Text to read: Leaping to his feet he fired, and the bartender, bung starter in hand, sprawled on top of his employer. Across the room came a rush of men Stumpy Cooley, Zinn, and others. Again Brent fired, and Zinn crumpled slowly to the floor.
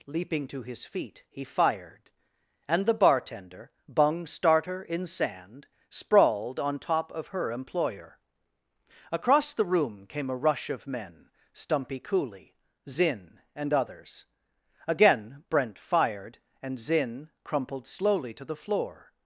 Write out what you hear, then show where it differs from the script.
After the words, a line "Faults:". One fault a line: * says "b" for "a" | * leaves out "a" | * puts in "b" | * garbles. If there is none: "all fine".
Leaping to his feet he fired, and the bartender, bung starter in sand, sprawled on top of her employer. Across the room came a rush of men Stumpy Cooley, Zinn, and others. Again Brent fired, and Zinn crumpled slowly to the floor.
Faults:
* says "sand" for "hand"
* says "her" for "his"